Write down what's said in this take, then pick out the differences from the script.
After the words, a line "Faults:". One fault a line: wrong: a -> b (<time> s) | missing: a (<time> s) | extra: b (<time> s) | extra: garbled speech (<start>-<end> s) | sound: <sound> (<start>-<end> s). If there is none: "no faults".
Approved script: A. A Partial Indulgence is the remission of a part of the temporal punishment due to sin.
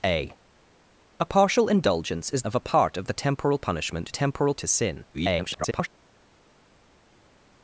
A. A Partial Indulgence is of a part of the temporal punishment temporal to sin. [garbled]
Faults:
missing: the remission (2.4 s)
wrong: due -> temporal (4.1 s)
extra: garbled speech (5.1-5.9 s)